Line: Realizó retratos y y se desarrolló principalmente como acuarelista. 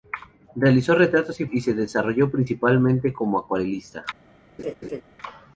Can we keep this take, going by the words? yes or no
yes